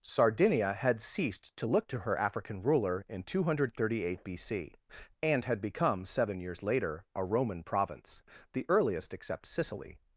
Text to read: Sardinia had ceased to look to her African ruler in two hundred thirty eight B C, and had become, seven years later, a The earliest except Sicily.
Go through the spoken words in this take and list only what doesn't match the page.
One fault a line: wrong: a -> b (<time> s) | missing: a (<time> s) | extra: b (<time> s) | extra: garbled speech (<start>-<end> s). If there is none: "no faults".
extra: Roman province (7.2 s)